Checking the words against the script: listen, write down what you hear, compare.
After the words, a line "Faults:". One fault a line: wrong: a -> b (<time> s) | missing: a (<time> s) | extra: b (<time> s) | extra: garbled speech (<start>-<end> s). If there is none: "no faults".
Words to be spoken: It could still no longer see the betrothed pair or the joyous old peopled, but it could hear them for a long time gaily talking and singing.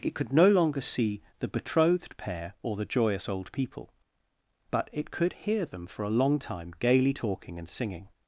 It could no longer see the betrothed pair or the joyous old people, but it could hear them for a long time gaily talking and singing.
Faults:
missing: still (0.3 s)
wrong: peopled -> people (3.5 s)